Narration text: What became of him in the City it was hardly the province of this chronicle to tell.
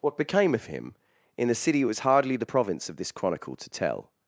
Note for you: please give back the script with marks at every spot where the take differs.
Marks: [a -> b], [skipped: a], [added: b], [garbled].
What became of him in the City it was hardly the province of this chronicle to tell.